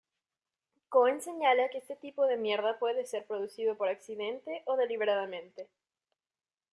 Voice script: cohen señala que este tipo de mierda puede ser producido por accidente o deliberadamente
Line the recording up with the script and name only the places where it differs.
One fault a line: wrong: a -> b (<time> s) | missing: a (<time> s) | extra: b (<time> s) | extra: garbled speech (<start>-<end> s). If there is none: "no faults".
no faults